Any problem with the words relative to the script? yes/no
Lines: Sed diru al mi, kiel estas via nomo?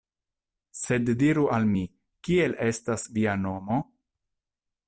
no